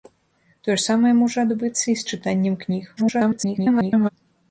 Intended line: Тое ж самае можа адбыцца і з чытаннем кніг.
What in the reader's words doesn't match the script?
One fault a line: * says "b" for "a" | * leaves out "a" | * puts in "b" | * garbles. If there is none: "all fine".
* garbles